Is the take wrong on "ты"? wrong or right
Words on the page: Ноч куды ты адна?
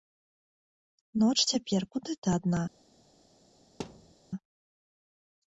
right